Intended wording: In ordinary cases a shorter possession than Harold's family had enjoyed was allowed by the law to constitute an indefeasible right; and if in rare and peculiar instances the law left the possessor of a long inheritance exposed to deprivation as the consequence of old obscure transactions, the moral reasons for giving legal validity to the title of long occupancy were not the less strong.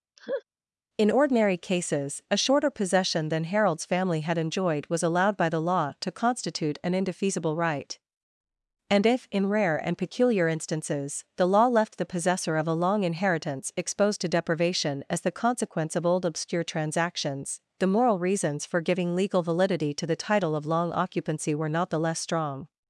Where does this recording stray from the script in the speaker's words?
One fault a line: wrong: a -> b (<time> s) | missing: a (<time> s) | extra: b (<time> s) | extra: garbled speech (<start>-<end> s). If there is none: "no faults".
no faults